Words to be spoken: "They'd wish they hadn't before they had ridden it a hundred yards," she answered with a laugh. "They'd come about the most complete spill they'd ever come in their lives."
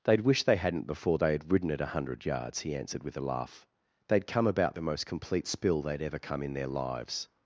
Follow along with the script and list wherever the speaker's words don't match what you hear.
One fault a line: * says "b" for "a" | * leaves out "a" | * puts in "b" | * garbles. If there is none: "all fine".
* says "he" for "she"